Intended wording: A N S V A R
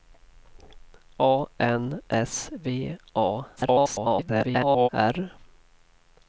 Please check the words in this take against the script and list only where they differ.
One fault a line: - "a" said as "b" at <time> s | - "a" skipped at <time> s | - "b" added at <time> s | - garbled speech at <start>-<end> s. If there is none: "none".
- garbled speech at 3.6-4.9 s